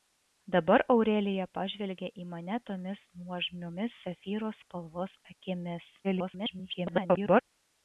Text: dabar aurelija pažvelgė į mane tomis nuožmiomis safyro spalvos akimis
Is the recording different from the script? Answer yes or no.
yes